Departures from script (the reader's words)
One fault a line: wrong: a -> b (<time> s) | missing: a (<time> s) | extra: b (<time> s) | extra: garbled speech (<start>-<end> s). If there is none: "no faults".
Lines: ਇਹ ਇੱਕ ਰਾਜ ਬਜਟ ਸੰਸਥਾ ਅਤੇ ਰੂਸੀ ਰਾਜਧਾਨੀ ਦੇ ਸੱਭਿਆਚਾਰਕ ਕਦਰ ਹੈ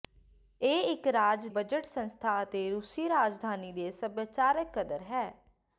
no faults